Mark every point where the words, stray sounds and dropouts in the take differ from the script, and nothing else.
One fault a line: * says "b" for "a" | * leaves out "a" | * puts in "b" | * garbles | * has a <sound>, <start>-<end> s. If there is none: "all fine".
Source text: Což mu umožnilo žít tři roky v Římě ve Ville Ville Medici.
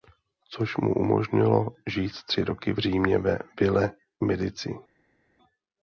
* leaves out "Ville"